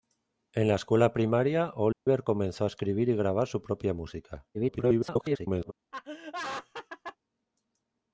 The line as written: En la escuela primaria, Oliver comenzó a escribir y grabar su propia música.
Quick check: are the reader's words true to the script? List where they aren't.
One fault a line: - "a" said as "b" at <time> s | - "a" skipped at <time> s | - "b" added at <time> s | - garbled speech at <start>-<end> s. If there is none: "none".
- garbled speech at 4.5-5.7 s